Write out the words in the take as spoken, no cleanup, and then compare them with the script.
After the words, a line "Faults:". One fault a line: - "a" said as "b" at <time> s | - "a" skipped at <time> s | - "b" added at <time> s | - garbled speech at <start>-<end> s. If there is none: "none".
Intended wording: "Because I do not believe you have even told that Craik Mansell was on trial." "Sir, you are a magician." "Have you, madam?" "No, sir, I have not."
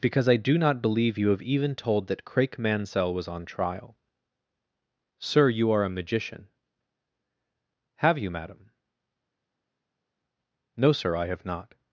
"Because I do not believe you have even told that Craik Mansell was on trial." "Sir, you are a magician." "Have you, madam?" "No, sir, I have not."
Faults:
none